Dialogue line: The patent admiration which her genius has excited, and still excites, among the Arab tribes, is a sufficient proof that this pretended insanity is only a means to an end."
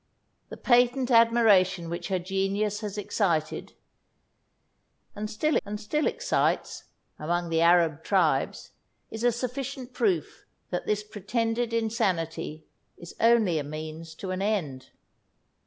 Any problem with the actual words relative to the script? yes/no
yes